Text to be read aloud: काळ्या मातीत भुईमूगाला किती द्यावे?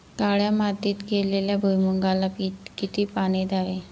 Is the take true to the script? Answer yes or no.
no